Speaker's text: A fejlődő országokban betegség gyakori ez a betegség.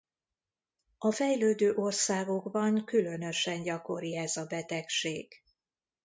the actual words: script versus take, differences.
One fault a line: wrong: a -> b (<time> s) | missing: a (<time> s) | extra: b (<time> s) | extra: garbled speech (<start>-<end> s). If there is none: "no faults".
wrong: betegség -> különösen (2.9 s)